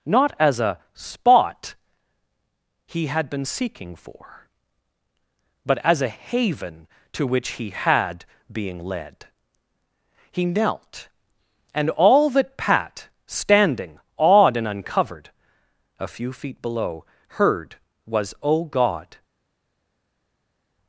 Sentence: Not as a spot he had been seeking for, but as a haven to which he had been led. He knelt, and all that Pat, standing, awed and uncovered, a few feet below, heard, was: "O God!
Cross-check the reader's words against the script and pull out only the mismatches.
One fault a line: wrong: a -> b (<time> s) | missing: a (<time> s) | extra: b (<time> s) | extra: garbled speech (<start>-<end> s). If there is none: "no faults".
wrong: been -> being (8.5 s)